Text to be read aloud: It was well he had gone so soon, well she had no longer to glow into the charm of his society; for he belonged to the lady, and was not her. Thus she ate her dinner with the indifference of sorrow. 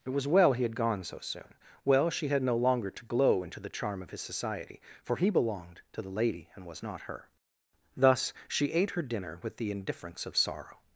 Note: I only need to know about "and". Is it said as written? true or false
true